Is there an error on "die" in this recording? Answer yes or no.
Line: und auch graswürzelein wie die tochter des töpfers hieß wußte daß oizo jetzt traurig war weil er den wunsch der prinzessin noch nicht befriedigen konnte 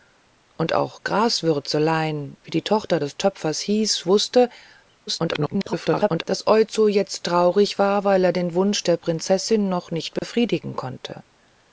no